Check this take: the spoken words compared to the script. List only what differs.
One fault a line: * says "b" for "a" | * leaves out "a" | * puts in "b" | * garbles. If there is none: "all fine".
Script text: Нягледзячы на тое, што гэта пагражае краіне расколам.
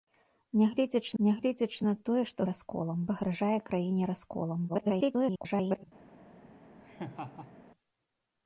* puts in "нягледзячы"
* says "расколам" for "гэта"
* garbles